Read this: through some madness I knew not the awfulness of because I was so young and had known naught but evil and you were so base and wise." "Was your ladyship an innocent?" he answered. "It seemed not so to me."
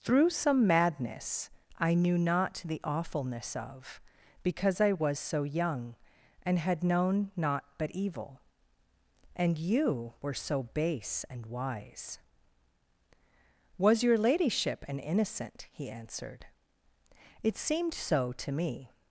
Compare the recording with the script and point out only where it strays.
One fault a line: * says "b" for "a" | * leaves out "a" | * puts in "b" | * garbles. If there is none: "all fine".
* leaves out "not"